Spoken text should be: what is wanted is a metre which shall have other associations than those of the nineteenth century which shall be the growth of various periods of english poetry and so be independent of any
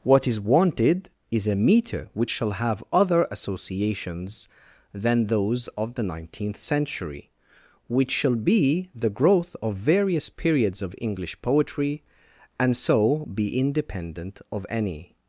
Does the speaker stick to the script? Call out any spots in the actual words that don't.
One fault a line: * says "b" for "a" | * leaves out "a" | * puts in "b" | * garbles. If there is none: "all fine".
all fine